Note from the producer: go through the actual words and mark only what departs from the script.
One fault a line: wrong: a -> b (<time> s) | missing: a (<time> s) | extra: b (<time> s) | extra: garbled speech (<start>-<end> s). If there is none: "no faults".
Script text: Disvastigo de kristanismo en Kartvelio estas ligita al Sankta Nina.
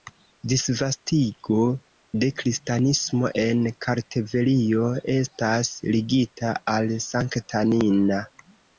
no faults